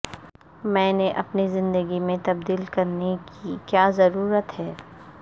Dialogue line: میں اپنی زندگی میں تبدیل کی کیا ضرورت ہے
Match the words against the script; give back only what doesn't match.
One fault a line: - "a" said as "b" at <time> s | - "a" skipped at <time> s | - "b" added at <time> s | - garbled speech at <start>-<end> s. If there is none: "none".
- "نے" added at 0.9 s
- "کرنے" added at 2.7 s